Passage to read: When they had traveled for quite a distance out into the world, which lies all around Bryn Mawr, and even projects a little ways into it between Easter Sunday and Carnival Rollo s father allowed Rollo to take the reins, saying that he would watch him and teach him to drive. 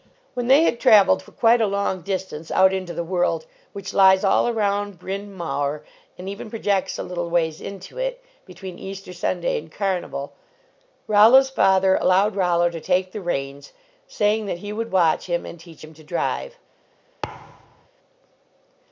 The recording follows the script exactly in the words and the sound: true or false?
false